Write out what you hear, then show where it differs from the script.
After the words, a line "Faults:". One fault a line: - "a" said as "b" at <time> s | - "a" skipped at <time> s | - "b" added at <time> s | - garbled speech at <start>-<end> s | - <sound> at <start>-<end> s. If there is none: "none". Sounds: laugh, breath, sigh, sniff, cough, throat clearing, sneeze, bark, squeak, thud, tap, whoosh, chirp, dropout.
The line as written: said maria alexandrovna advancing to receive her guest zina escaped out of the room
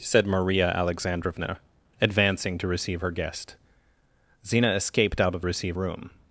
said maria alexandrovna advancing to receive her guest zina escaped out of receive room
Faults:
- "the" said as "receive" at 5.4 s